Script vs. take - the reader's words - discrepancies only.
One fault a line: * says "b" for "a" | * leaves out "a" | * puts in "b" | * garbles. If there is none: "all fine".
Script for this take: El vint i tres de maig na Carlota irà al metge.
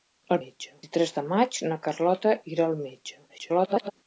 * says "metge" for "vint"
* garbles